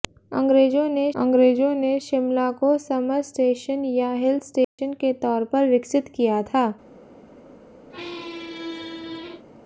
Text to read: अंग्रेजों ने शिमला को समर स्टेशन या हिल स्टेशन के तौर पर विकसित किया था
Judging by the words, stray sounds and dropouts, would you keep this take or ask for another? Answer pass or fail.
fail